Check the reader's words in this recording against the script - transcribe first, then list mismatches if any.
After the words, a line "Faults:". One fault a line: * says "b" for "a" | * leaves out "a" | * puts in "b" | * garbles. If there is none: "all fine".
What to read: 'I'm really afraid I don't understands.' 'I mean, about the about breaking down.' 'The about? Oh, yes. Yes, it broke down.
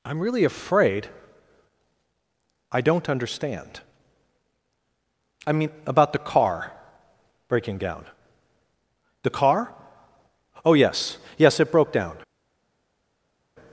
'I'm really afraid I don't understand.' 'I mean, about the car breaking down.' 'The car? Oh, yes. Yes, it broke down.
Faults:
* says "understand" for "understands"
* says "car" for "about"
* says "car" for "about"